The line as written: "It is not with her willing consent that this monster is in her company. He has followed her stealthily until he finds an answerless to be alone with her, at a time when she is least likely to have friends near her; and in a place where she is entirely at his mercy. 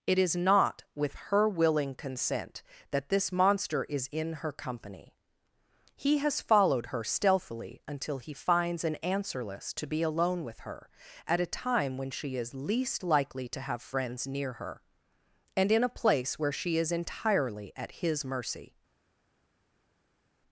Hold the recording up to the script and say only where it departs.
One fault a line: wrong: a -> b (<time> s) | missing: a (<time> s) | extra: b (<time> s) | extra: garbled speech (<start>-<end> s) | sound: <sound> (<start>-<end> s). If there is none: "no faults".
no faults